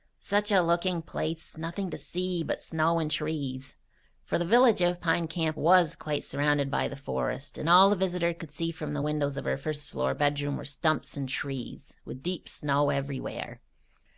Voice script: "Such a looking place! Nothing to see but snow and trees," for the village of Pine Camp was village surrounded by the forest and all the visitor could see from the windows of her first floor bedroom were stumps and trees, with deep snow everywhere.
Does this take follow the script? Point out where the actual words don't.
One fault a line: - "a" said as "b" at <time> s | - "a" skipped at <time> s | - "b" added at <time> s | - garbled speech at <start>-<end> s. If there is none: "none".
- "village" said as "quite" at 6.0 s